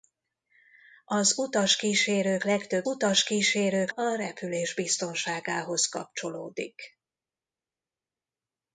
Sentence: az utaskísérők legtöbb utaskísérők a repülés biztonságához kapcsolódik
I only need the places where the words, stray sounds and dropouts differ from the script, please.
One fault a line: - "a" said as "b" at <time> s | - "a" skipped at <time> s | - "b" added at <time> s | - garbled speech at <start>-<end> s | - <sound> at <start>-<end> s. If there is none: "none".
none